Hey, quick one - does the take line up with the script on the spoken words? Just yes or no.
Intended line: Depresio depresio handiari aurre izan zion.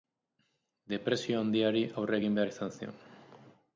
no